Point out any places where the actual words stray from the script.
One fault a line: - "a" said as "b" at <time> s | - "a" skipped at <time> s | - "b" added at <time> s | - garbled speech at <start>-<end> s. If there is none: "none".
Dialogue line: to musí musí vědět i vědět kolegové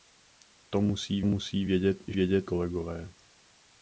none